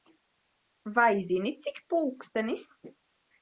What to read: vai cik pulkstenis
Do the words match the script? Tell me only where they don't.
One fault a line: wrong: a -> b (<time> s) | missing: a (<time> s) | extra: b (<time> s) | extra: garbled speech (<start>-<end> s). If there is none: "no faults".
extra: zini (1.3 s)